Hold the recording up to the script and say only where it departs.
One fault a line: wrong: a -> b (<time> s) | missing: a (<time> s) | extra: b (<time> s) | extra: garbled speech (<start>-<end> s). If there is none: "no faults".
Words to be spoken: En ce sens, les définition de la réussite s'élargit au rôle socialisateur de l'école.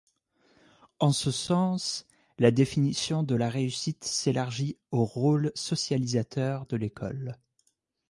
wrong: les -> la (2.4 s)